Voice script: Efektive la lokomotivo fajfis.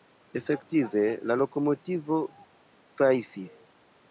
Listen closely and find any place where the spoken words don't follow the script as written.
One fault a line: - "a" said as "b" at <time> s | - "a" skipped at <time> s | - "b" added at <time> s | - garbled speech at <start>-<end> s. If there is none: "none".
none